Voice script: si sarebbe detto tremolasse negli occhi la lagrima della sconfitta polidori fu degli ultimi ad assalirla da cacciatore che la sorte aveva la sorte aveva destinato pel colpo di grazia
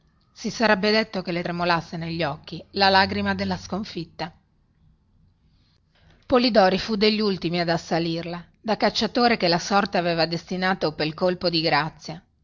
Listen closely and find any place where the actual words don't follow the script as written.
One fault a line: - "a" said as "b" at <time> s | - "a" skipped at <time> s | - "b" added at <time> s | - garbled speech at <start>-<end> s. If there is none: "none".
- "che le" added at 1.2 s
- "la sorte aveva" skipped at 10.3 s